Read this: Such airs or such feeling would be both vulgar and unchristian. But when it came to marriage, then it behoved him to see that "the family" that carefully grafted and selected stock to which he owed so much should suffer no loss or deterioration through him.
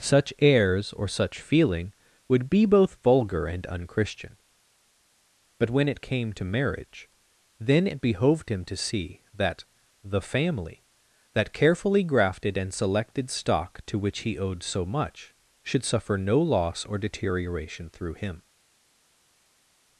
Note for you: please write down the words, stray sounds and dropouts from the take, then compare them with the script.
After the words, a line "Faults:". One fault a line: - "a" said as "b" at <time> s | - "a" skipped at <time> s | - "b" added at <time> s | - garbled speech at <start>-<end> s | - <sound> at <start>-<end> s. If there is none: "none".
Such airs or such feeling would be both vulgar and unchristian. But when it came to marriage, then it behoved him to see that "the family" that carefully grafted and selected stock to which he owed so much should suffer no loss or deterioration through him.
Faults:
none